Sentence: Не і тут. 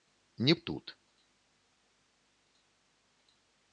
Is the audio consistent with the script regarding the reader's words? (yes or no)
yes